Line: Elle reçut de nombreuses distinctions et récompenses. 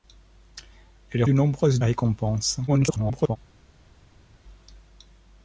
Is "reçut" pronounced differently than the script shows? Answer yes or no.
yes